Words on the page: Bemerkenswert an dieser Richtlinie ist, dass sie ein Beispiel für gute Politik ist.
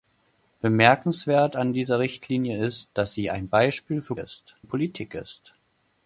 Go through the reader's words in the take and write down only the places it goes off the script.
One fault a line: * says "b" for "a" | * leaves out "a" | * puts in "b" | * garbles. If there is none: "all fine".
* says "ist" for "gute"